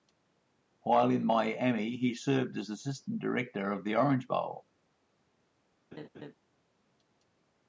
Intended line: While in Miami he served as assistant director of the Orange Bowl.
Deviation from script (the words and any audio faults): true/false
true